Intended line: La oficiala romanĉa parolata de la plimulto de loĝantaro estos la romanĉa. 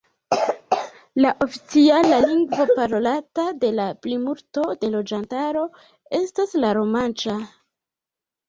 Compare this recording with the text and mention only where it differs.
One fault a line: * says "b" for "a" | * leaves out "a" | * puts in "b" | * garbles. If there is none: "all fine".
* says "lingvo" for "romanĉa"
* says "estas" for "estos"